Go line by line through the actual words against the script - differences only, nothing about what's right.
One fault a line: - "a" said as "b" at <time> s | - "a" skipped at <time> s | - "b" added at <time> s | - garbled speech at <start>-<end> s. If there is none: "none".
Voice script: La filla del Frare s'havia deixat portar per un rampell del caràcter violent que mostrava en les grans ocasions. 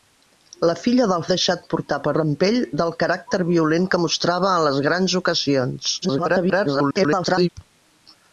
- "Frare s'havia" skipped at 1.2 s
- "un" skipped at 2.1 s
- garbled speech at 6.0-7.5 s